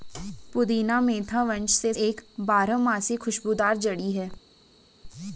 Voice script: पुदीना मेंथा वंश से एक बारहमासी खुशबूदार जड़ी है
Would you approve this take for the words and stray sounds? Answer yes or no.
yes